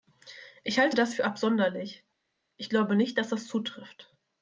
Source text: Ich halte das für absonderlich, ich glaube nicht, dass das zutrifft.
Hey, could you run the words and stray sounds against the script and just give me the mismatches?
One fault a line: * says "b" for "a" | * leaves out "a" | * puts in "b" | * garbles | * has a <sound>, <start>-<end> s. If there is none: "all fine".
all fine